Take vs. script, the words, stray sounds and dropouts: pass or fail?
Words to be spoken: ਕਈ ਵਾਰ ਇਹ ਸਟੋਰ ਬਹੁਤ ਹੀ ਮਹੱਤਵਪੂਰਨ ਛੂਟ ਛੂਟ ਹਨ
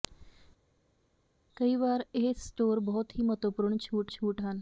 pass